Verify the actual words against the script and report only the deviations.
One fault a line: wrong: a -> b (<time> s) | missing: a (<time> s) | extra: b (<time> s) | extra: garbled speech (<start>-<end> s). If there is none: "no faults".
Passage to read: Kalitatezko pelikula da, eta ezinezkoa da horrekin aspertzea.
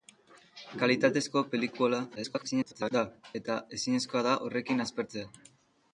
extra: garbled speech (2.1-2.9 s)